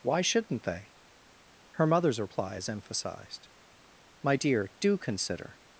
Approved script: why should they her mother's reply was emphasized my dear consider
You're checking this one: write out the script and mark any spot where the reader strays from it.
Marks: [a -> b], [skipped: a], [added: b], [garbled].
why [should -> shouldn't] they her mother's reply [was -> is] emphasized my dear [added: do] consider